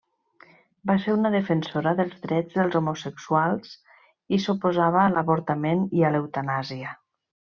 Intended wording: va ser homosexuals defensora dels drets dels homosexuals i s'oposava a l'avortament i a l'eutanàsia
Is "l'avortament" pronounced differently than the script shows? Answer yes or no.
no